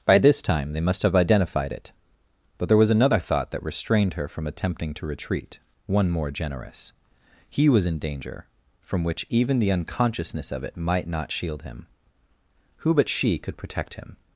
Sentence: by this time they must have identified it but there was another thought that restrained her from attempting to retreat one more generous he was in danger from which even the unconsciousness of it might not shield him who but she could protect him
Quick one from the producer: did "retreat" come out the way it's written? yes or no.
yes